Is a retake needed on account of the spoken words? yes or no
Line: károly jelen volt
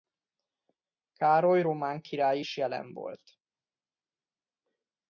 yes